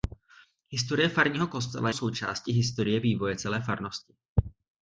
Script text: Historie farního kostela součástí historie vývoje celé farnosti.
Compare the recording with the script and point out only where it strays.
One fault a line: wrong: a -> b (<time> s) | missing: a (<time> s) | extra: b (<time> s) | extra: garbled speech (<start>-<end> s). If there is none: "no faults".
no faults